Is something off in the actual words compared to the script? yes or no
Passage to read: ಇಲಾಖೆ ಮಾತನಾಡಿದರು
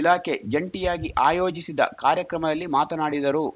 yes